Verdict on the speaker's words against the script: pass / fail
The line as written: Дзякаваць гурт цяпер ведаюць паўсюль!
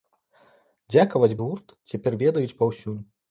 pass